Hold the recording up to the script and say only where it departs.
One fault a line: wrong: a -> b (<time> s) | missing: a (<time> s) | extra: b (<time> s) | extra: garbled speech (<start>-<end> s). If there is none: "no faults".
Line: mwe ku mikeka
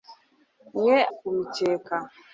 no faults